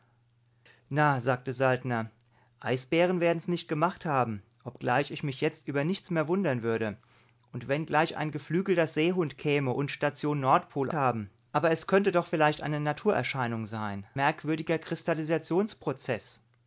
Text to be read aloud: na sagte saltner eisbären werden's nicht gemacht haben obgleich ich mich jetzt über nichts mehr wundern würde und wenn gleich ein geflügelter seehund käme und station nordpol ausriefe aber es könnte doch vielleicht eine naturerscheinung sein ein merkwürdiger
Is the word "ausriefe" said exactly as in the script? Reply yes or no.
no